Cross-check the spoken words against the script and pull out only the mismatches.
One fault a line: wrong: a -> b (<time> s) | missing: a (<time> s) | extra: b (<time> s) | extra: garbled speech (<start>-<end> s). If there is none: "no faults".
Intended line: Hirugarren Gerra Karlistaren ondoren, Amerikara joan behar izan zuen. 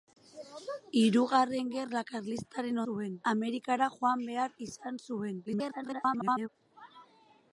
wrong: ondoren -> zuen (2.8 s)
extra: garbled speech (5.5-6.5 s)